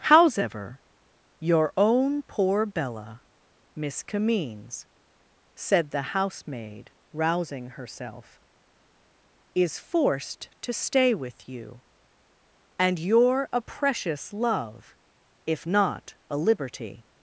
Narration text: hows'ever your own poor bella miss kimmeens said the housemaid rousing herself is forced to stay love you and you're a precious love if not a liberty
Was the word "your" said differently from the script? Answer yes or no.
no